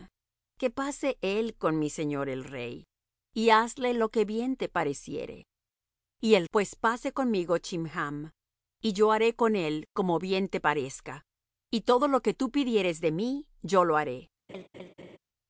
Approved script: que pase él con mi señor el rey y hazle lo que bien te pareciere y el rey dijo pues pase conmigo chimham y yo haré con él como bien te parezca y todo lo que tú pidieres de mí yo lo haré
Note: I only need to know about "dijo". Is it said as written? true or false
false